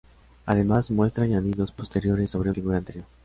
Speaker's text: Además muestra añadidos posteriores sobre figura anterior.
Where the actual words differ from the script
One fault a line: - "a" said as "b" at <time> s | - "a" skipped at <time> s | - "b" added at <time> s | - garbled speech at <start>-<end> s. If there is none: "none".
none